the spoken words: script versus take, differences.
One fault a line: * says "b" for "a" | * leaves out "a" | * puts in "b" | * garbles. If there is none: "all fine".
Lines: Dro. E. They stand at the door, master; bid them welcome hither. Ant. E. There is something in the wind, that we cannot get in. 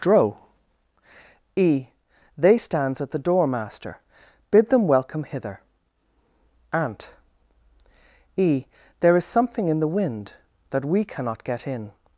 * says "stands" for "stand"